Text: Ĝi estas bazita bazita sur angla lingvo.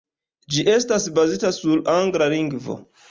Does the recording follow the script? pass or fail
fail